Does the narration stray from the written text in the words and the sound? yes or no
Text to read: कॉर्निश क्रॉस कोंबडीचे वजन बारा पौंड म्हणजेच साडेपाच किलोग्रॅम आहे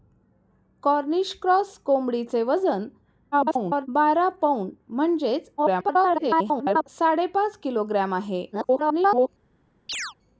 yes